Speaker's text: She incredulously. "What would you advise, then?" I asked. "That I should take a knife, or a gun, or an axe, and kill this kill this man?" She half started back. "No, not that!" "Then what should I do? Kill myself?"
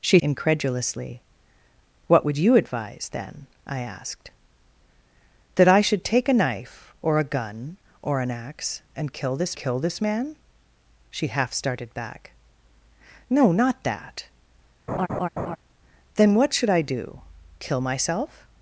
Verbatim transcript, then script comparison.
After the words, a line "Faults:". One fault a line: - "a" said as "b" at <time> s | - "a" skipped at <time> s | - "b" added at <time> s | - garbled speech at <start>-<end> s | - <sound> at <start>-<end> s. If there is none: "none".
She incredulously. "What would you advise, then?" I asked. "That I should take a knife, or a gun, or an axe, and kill this kill this man?" She half started back. "No, not that!" "Then what should I do? Kill myself?"
Faults:
- laugh at 14.9-15.6 s